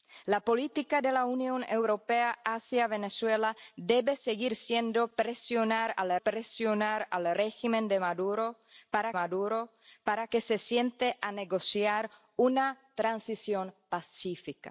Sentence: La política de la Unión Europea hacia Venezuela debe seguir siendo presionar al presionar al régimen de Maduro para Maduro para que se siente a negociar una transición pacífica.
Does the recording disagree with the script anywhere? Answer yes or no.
no